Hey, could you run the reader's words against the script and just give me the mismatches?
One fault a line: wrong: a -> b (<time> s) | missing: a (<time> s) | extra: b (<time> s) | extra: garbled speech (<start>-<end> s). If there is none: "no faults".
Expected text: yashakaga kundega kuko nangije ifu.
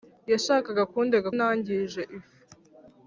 missing: kuko (1.3 s)